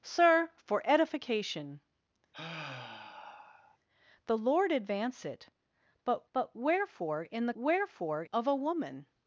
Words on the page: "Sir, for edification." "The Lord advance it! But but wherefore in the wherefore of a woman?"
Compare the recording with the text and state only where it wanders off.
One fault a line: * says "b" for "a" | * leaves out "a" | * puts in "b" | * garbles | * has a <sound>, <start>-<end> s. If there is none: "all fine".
* has a sigh, 2.3-3.8 s